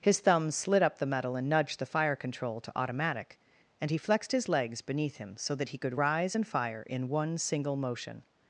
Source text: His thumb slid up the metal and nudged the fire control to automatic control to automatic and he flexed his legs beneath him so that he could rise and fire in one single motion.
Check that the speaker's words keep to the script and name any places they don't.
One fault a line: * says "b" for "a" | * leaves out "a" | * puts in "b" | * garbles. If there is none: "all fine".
* leaves out "control to automatic"